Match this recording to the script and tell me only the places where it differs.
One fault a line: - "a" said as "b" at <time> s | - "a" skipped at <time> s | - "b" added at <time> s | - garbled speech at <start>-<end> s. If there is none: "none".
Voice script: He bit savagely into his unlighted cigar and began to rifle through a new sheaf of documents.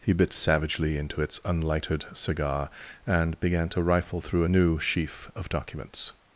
- "his" said as "its" at 1.2 s